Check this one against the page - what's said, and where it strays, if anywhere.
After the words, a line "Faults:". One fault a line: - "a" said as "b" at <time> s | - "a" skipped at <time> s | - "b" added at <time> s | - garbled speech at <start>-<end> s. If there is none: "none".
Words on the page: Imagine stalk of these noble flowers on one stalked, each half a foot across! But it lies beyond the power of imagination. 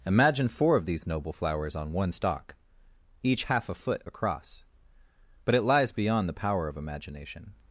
Imagine four of these noble flowers on one stalk, each half a foot across! But it lies beyond the power of imagination.
Faults:
- "stalk" said as "four" at 0.5 s
- "stalked" said as "stalk" at 2.1 s